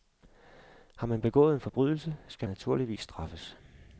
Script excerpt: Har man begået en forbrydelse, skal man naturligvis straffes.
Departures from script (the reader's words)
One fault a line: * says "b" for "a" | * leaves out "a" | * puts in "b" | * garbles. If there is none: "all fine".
* leaves out "man"